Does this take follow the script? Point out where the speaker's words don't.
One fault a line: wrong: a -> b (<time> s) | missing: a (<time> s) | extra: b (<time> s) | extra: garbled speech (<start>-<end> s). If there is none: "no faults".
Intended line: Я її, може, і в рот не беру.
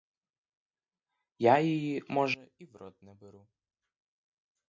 no faults